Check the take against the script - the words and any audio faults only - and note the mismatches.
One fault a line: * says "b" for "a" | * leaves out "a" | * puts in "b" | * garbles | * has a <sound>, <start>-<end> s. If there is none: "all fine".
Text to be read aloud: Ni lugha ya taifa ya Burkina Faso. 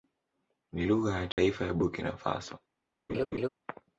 * has a dropout, 1.3-1.4 s
* has a laugh, 3.1-3.5 s